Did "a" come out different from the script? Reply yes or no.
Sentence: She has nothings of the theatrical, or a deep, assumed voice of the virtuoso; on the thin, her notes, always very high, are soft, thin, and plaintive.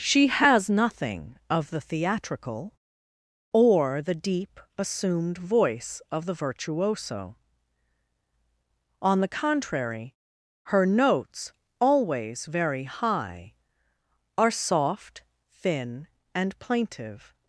yes